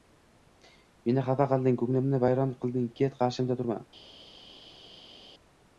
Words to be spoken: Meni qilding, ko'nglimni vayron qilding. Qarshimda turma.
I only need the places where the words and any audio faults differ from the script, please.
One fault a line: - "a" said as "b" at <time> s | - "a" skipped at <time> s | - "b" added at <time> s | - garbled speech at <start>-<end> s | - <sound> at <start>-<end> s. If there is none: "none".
- "xafa" added at 1.3 s
- "Ket" added at 3.0 s